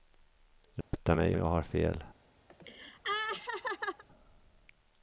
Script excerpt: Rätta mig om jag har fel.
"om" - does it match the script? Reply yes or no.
no